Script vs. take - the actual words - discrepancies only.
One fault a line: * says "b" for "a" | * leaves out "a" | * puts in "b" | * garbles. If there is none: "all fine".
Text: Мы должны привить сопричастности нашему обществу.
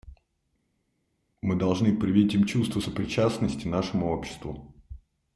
* puts in "им чувство"